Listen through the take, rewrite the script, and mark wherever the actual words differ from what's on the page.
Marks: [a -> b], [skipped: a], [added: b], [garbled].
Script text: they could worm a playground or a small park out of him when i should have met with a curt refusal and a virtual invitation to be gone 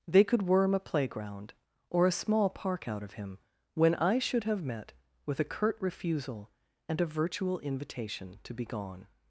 they could worm a playground or a small park out of him when i should have met with a curt refusal and a virtual invitation to be gone